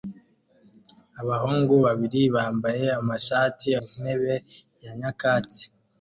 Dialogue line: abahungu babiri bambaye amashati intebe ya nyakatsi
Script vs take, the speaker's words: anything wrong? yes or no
no